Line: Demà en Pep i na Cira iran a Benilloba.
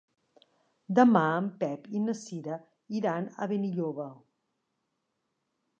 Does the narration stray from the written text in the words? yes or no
no